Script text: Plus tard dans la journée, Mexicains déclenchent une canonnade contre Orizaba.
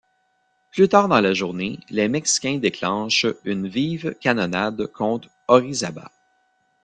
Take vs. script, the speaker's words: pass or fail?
fail